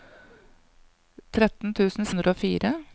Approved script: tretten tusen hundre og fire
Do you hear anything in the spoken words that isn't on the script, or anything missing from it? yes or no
no